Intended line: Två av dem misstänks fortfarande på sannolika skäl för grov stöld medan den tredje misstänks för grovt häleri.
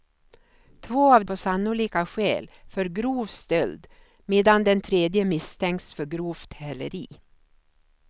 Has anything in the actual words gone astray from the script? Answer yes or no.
yes